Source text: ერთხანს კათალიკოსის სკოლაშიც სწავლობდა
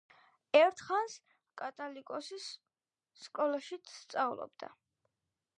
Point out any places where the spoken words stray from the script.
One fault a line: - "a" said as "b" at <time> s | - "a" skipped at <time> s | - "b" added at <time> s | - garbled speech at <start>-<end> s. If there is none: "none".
none